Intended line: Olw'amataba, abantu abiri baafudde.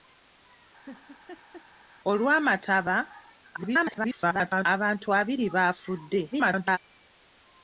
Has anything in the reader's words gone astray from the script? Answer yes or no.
yes